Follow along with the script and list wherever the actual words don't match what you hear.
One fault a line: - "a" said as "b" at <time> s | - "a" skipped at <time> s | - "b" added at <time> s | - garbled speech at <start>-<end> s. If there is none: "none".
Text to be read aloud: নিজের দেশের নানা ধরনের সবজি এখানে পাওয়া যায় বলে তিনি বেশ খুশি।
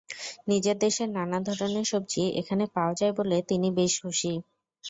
none